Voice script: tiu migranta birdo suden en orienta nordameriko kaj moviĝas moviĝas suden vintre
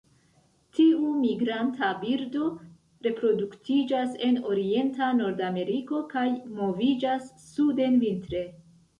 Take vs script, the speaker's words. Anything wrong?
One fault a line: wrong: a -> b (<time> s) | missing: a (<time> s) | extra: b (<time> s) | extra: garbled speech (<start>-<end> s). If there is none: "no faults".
wrong: suden -> reproduktiĝas (3.1 s)
missing: moviĝas (7.3 s)